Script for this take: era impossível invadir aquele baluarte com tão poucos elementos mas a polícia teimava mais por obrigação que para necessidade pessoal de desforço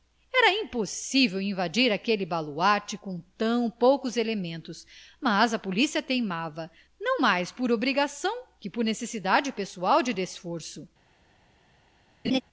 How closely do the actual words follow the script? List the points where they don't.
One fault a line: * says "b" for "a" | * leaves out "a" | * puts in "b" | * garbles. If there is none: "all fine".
* puts in "não"
* says "por" for "para"